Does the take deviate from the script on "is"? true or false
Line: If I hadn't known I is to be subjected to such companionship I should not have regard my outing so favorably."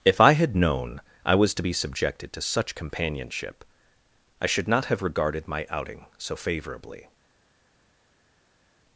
true